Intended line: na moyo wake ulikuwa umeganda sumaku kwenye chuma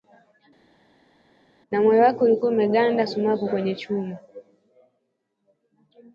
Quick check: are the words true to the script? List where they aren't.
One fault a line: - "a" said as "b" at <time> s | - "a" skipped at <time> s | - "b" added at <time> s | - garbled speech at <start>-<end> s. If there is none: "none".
none